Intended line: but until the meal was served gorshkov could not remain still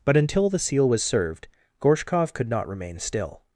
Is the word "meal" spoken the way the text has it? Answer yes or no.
no